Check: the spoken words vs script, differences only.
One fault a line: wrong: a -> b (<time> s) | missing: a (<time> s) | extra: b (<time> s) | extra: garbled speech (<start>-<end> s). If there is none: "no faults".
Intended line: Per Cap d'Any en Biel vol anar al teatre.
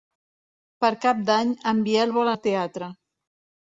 missing: anar (2.3 s)